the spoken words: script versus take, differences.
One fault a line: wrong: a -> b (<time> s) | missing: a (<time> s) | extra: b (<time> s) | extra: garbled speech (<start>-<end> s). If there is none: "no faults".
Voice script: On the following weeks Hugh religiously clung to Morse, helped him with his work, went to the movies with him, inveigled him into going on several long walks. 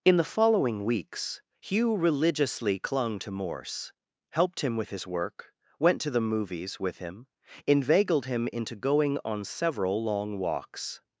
wrong: On -> In (0.0 s)